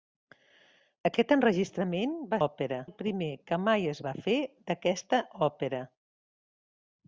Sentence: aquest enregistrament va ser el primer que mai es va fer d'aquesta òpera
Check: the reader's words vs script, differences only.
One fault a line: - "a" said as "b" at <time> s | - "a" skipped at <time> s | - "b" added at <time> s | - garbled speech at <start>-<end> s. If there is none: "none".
- "ser" said as "òpera" at 2.5 s